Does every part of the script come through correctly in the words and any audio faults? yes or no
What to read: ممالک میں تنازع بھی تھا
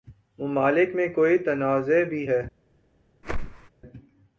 no